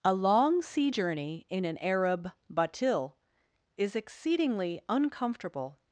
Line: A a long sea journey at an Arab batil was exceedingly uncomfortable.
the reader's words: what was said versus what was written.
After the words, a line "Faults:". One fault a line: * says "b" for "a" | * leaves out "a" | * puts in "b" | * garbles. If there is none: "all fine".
A long sea journey in an Arab batil is exceedingly uncomfortable.
Faults:
* leaves out "a"
* says "in" for "at"
* says "is" for "was"